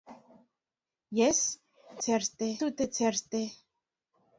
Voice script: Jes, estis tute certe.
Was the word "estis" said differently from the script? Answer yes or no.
yes